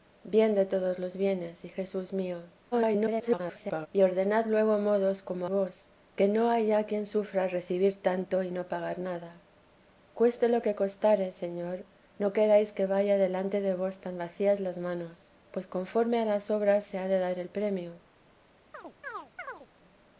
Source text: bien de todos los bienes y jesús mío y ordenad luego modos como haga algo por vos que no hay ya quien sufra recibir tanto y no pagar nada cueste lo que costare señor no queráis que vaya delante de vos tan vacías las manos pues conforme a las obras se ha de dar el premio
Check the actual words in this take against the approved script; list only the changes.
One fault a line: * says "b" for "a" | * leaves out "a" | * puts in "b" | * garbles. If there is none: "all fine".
* garbles
* leaves out "haga algo por"